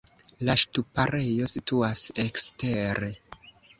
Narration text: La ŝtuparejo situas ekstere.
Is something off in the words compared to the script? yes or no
no